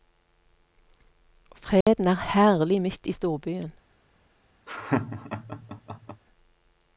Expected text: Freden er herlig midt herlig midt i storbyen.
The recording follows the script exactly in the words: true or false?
false